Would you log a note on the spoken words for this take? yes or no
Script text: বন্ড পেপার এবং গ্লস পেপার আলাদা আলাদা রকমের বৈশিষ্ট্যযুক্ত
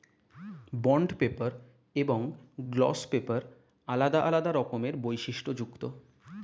no